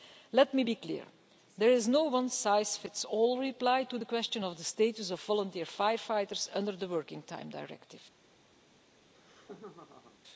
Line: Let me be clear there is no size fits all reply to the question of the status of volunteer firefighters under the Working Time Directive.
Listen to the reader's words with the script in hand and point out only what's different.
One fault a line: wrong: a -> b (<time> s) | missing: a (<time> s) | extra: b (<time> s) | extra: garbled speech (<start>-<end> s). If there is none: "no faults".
extra: one (2.0 s)